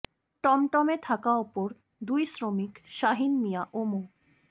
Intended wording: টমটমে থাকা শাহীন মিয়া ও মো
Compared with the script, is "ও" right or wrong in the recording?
right